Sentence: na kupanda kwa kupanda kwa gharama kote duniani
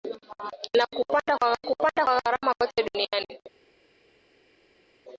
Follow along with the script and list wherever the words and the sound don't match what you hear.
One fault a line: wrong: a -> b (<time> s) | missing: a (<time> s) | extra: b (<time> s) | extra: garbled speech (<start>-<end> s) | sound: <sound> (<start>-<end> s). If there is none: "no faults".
no faults